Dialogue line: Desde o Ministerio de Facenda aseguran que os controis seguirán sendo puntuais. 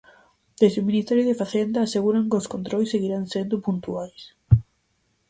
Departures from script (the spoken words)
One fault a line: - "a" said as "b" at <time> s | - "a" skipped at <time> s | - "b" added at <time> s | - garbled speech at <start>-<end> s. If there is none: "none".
none